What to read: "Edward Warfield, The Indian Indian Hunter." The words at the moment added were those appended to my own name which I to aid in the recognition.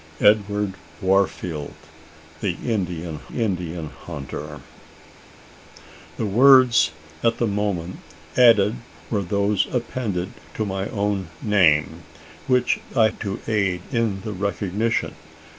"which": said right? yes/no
yes